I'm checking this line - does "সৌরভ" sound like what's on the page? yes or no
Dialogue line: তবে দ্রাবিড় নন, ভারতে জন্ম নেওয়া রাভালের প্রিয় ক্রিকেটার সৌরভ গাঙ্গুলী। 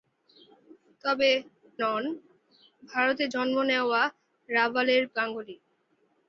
no